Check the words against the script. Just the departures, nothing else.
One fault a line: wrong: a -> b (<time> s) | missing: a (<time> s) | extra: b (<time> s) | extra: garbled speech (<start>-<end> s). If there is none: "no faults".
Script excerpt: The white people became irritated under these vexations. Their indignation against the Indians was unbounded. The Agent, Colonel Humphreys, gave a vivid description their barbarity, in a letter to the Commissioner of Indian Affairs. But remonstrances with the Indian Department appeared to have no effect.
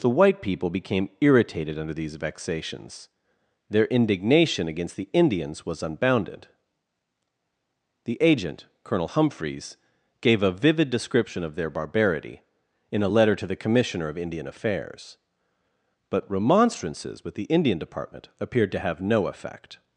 extra: of (11.4 s)